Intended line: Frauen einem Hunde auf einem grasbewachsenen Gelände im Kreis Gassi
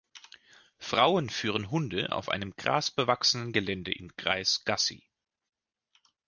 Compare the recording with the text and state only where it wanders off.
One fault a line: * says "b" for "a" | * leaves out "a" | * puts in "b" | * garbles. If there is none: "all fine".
* says "führen" for "einem"